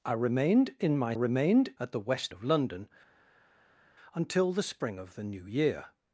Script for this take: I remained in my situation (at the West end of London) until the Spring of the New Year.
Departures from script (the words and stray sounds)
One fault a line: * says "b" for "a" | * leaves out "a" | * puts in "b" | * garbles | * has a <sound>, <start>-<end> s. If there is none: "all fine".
* says "remained" for "situation"
* leaves out "end"